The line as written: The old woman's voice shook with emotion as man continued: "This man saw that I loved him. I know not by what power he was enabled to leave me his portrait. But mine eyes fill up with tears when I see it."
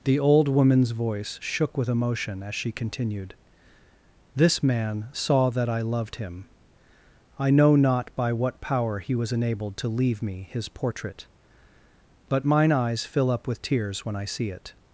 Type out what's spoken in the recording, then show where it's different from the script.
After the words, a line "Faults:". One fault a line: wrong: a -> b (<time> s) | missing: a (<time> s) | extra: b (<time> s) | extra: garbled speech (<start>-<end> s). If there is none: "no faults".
The old woman's voice shook with emotion as she continued: "This man saw that I loved him. I know not by what power he was enabled to leave me his portrait. But mine eyes fill up with tears when I see it."
Faults:
wrong: man -> she (2.5 s)